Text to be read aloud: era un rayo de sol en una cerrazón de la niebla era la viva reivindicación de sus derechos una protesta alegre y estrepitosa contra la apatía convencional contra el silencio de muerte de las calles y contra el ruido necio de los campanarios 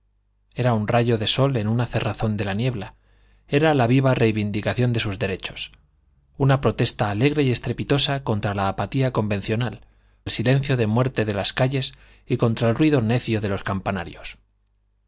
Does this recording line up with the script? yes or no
no